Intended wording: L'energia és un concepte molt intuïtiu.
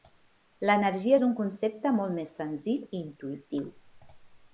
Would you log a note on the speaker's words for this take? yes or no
yes